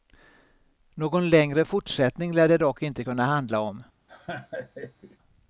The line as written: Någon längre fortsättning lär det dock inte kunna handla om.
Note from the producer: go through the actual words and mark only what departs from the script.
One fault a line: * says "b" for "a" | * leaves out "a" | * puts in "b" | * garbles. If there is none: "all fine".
all fine